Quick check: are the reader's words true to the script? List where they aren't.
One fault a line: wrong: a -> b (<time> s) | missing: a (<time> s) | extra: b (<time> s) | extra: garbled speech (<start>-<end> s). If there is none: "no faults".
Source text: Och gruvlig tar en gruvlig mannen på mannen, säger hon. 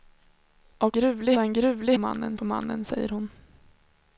no faults